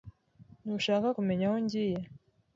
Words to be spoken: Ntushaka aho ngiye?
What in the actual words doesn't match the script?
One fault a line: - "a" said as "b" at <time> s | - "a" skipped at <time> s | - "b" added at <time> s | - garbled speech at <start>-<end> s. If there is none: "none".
- "kumenya" added at 1.2 s